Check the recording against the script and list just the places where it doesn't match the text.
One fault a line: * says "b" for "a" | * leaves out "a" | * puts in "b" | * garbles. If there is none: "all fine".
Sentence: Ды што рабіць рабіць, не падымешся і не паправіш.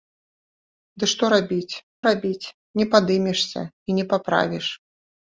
all fine